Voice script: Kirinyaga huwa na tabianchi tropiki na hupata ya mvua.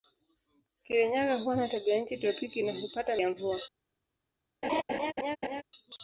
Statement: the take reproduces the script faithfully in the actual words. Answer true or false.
true